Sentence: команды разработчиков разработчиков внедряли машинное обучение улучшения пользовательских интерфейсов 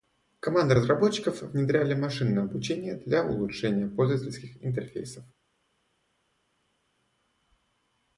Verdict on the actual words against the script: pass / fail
fail